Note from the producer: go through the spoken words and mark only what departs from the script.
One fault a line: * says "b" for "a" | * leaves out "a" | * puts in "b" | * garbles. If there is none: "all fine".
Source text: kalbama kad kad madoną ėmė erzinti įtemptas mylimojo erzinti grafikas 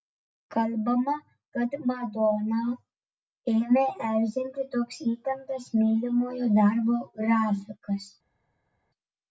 * leaves out "kad"
* puts in "toks"
* says "darbo" for "erzinti"